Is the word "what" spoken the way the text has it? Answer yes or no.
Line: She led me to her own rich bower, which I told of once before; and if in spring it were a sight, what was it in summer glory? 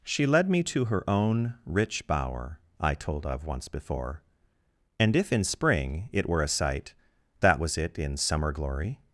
no